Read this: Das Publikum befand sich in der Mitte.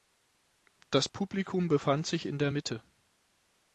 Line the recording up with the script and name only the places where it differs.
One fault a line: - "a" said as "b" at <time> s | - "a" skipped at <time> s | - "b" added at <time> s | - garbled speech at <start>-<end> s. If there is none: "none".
none